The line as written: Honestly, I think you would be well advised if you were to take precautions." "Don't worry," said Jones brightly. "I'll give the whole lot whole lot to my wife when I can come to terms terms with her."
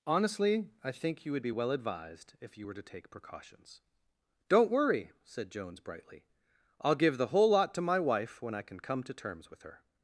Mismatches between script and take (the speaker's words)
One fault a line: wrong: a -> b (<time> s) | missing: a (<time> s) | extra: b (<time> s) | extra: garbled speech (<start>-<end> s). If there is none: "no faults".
missing: whole lot (7.7 s)
missing: terms (9.5 s)